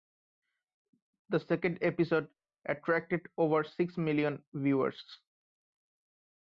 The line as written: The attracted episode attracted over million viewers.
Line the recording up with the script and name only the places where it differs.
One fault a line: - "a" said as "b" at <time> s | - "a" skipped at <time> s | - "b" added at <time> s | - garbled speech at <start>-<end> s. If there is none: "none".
- "attracted" said as "second" at 1.4 s
- "six" added at 3.6 s